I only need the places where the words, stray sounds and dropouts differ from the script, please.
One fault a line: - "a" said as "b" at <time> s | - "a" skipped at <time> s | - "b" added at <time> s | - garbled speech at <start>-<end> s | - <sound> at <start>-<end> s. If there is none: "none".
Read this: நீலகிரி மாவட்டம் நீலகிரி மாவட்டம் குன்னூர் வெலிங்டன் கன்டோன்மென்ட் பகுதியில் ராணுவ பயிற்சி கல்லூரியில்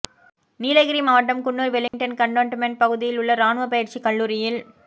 - "நீலகிரி மாவட்டம்" skipped at 1.4 s
- dropout at 1.9-1.9 s
- "உள்ள" added at 3.2 s